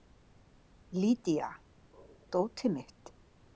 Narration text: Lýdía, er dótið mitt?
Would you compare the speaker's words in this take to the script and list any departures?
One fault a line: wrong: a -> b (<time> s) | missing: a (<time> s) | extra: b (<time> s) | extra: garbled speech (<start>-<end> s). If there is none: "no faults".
no faults